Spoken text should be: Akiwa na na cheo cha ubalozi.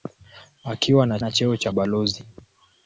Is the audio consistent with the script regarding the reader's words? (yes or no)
yes